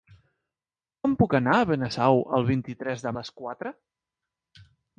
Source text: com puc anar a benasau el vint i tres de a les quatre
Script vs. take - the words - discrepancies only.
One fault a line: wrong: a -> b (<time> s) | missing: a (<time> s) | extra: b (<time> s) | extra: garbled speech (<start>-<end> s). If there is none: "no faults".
no faults